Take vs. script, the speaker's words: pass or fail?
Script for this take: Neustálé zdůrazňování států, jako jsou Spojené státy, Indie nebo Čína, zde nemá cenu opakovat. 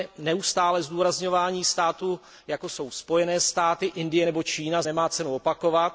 fail